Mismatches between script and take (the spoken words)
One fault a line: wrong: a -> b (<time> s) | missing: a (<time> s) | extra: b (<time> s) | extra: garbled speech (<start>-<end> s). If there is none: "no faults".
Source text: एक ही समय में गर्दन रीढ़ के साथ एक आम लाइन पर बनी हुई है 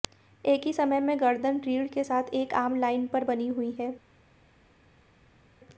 no faults